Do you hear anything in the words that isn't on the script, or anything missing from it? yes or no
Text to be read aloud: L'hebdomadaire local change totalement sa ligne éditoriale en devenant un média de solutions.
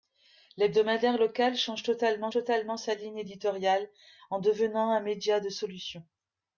yes